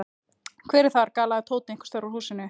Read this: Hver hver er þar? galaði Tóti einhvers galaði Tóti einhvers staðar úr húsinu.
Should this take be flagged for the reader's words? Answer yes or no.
yes